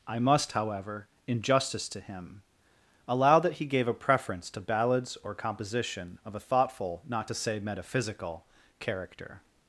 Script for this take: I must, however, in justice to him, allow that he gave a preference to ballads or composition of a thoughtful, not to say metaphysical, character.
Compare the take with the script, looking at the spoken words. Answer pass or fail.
pass